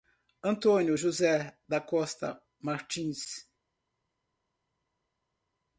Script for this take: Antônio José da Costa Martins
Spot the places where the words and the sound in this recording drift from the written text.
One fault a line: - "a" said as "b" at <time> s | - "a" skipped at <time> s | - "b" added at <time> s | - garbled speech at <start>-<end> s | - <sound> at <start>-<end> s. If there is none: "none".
none